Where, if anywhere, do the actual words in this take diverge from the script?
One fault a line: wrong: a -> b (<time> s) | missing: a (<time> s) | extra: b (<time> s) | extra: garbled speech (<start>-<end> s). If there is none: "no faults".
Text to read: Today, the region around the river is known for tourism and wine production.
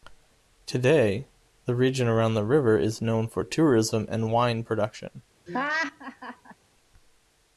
no faults